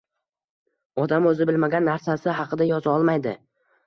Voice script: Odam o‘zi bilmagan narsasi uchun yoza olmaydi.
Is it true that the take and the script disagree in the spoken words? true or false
true